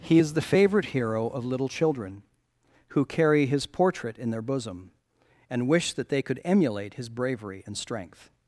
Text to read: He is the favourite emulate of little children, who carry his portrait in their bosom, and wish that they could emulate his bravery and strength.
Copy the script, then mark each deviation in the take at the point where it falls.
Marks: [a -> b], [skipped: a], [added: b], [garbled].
He is the favourite [emulate -> hero] of little children, who carry his portrait in their bosom, and wish that they could emulate his bravery and strength.